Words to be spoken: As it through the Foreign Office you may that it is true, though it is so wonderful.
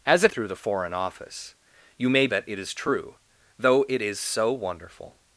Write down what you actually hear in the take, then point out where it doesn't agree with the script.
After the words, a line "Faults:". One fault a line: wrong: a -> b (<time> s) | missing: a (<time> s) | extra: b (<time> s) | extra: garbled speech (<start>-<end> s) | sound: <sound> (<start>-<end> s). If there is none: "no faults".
As it through the Foreign Office you may that it is true, though it is so wonderful.
Faults:
no faults